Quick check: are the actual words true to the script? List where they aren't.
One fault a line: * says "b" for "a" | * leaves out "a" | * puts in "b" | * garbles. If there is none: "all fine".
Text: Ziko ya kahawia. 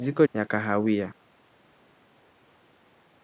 all fine